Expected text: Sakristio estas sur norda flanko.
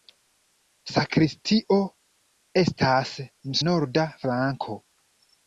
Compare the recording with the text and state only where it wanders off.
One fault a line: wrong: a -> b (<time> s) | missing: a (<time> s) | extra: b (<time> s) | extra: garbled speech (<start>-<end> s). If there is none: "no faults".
missing: sur (3.1 s)